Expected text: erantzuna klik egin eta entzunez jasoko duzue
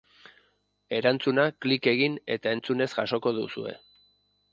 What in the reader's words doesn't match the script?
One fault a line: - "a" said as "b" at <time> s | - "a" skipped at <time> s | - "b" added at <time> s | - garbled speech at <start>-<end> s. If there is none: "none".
none